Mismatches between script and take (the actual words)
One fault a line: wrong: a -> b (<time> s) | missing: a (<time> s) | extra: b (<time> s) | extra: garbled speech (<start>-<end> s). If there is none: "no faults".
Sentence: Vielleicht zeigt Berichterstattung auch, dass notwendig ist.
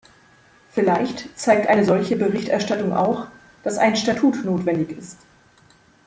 extra: eine solche (1.7 s)
extra: ein Statut (3.8 s)